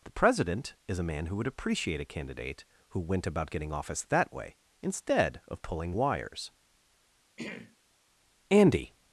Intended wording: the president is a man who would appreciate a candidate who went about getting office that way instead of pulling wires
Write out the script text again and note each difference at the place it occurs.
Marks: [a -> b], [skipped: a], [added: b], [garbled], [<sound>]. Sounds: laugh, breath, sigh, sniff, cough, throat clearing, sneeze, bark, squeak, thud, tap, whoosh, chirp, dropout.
the president is a man who would appreciate a candidate who went about getting office that way instead of pulling wires [throat clearing] [added: andy]